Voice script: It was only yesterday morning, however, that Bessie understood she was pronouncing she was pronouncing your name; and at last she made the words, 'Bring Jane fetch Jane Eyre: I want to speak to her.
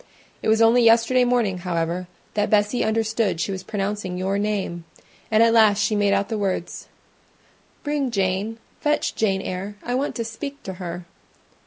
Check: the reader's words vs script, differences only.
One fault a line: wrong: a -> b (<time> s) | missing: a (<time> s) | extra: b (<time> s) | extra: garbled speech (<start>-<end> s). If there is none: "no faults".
missing: she was pronouncing (4.2 s)
extra: out (6.1 s)